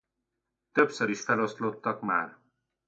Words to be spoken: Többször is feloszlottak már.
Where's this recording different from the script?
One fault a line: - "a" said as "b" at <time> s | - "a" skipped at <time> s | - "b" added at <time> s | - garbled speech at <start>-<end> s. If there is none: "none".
none